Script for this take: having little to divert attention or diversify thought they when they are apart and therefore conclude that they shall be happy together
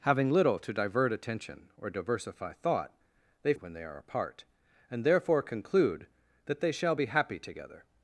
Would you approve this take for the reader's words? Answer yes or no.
yes